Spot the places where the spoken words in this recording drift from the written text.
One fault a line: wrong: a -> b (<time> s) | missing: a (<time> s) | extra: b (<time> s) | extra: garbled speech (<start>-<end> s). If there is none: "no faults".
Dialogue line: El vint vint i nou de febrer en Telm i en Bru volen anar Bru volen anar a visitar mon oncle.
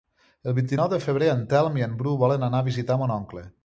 missing: vint (0.7 s)
missing: Bru volen anar (2.6 s)